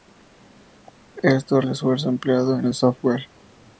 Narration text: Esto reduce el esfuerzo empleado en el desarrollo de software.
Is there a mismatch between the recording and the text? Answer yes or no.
yes